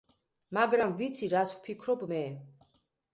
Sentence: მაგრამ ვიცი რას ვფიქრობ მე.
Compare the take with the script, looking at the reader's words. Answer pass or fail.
pass